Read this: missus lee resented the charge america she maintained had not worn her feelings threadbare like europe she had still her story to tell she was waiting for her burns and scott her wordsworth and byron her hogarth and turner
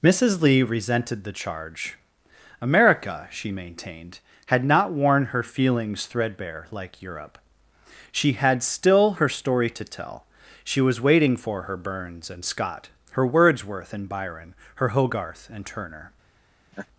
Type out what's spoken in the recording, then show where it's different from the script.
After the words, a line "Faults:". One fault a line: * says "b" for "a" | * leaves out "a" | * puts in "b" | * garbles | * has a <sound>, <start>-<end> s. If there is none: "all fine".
missus lee resented the charge america she maintained had not worn her feelings threadbare like europe she had still her story to tell she was waiting for her burns and scott her wordsworth and byron her hogarth and turner
Faults:
* has a laugh, 16.7-16.9 s